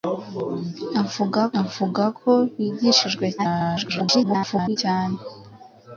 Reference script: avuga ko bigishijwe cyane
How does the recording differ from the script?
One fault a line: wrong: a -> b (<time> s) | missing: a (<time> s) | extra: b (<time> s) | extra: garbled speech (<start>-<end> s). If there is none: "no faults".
extra: avuga (1.6 s)
extra: garbled speech (3.4-4.8 s)